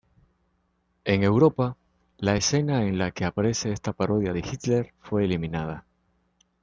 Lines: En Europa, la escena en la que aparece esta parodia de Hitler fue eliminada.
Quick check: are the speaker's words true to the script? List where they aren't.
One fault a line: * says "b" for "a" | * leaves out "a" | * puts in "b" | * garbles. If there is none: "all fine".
all fine